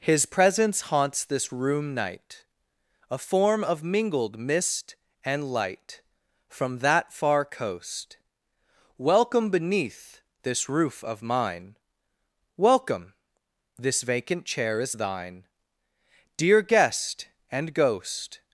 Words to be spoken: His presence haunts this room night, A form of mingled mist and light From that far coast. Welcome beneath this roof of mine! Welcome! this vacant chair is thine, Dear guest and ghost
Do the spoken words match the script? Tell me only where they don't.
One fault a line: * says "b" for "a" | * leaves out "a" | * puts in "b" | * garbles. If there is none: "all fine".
all fine